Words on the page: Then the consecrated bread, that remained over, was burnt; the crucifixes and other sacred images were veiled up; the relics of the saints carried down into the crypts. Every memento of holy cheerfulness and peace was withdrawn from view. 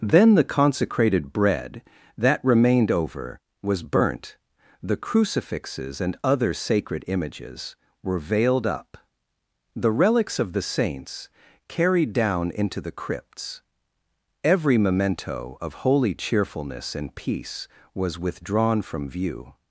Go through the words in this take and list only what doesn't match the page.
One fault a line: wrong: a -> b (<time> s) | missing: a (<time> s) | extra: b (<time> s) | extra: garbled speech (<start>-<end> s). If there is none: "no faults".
no faults